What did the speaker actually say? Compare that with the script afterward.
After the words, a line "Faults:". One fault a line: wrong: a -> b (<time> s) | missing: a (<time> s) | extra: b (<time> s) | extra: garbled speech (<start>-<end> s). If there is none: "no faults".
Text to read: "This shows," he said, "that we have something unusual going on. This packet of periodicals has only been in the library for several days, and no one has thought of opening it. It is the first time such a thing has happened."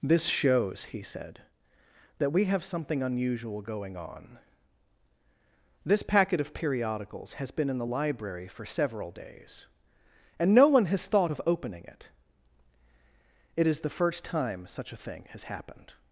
"This shows," he said, "that we have something unusual going on. This packet of periodicals has been in the library for several days, and no one has thought of opening it. It is the first time such a thing has happened."
Faults:
missing: only (7.5 s)